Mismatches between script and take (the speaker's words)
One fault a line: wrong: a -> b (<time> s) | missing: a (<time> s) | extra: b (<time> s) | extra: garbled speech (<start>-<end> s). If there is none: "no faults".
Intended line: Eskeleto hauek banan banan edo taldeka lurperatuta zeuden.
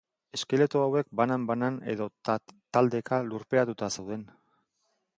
no faults